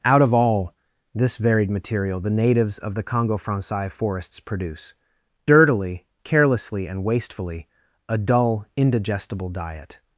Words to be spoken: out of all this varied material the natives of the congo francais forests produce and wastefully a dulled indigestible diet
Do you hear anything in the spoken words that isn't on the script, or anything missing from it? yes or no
yes